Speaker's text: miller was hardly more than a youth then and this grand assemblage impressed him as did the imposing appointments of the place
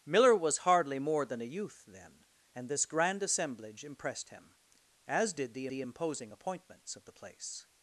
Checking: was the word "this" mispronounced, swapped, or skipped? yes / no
no